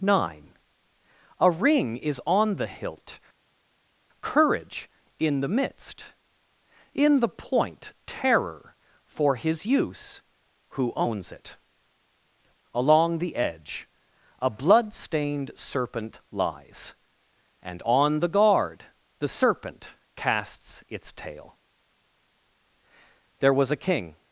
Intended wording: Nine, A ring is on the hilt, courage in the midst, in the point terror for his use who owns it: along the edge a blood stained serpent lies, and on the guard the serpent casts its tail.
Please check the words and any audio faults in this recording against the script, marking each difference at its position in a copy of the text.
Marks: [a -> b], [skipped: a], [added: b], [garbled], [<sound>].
Nine, A ring is on the hilt, courage in the midst, in the point terror for his use who owns it: along the edge a blood stained serpent lies, and on the guard the serpent casts its tail. [added: There was a king]